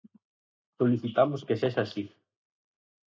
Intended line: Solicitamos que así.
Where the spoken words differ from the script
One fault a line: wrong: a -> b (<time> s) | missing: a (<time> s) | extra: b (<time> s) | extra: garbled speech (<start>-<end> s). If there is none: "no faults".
extra: sexa (1.6 s)